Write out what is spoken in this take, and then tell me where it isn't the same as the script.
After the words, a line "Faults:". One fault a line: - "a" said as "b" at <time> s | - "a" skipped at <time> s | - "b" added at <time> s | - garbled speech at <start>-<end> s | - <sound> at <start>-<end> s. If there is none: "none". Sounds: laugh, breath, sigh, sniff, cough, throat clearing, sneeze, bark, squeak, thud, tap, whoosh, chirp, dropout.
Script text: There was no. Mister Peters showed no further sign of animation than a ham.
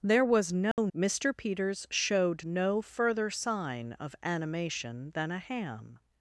There was no. Mister Peters showed no further sign of animation than a ham.
Faults:
- dropout at 0.7-0.8 s